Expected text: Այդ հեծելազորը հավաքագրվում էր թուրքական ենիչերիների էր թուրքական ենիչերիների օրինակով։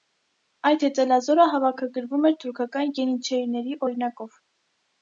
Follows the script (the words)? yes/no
no